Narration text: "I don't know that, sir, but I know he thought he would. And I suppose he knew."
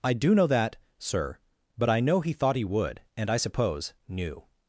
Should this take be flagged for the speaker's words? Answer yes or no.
yes